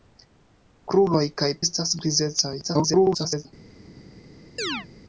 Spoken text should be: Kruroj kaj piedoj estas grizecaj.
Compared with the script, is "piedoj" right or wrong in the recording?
wrong